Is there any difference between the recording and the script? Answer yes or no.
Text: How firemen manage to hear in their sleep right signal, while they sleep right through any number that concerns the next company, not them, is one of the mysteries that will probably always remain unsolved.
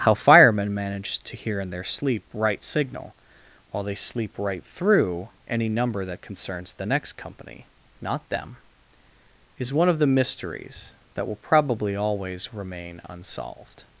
no